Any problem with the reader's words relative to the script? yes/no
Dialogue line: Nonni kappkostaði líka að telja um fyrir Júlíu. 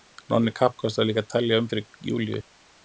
no